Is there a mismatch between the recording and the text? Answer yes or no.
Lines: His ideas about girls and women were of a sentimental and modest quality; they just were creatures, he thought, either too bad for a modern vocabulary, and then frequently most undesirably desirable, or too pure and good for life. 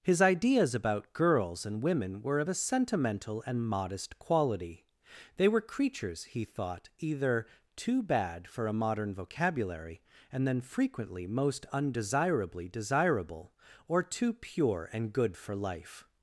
yes